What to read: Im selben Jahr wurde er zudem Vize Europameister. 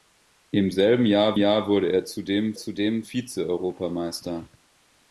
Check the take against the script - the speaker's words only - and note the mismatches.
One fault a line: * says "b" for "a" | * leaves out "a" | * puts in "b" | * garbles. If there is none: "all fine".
* puts in "Jahr"
* puts in "zudem"